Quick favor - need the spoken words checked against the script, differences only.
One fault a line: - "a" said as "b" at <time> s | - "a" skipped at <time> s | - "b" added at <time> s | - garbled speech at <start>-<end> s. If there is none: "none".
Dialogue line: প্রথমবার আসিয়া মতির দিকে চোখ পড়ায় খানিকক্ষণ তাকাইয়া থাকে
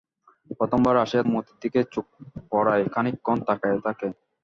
none